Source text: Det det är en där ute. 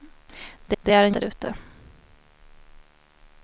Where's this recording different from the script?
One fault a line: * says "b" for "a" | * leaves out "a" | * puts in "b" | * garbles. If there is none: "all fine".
all fine